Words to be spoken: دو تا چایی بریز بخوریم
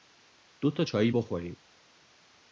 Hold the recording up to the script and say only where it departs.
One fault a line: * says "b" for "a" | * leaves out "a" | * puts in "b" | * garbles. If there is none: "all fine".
* leaves out "بریز"